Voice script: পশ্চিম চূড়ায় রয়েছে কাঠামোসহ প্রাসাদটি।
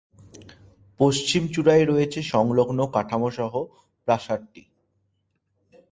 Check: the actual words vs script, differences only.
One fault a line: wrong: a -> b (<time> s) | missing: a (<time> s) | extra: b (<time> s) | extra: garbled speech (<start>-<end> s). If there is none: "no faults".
extra: সংলগ্ন (2.3 s)